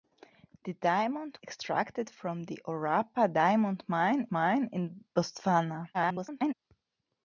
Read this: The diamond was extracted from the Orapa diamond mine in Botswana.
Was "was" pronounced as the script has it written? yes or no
no